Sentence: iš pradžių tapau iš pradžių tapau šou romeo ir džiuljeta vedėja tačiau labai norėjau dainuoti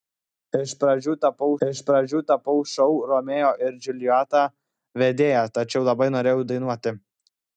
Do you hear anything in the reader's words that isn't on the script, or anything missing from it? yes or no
no